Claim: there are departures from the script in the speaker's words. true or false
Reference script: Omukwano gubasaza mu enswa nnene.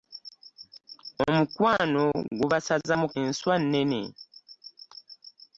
false